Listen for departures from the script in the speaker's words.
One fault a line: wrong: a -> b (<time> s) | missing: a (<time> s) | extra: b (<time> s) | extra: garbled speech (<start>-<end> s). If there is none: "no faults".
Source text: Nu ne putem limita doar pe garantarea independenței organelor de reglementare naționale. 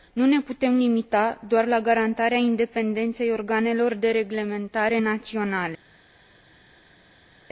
wrong: pe -> la (1.7 s)